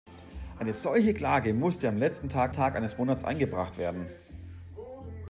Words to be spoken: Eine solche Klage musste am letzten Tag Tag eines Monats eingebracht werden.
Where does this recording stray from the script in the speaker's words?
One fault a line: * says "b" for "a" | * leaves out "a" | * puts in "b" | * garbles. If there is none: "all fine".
all fine